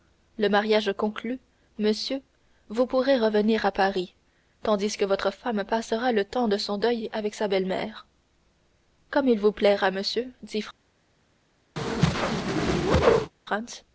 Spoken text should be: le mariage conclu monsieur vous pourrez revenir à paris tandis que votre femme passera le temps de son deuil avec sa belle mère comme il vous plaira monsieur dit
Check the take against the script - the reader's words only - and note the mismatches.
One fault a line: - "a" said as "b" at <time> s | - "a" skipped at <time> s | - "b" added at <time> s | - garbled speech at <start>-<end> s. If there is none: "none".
none